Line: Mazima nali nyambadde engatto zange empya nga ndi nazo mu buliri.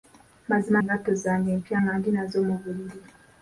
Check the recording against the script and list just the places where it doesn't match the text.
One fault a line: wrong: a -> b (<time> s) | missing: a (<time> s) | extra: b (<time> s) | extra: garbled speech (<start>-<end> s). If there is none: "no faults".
missing: nali nyambadde (0.8 s)